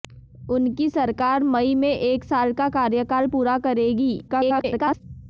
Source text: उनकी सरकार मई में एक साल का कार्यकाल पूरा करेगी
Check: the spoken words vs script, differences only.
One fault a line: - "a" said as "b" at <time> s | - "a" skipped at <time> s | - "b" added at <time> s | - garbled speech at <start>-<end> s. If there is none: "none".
- garbled speech at 4.3-5.0 s